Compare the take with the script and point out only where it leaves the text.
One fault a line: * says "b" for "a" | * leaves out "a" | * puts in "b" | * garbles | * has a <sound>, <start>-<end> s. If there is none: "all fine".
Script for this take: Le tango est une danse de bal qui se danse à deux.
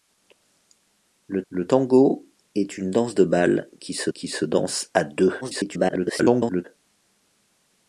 * puts in "le"
* puts in "qui se"
* garbles